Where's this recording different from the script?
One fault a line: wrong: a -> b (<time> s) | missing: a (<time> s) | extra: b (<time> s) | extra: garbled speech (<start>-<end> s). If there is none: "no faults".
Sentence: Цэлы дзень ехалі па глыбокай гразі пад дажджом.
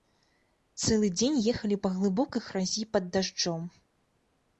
no faults